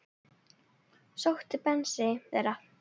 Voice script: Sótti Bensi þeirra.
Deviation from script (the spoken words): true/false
false